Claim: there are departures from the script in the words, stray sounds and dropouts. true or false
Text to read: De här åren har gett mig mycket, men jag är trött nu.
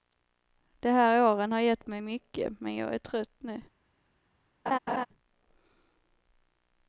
true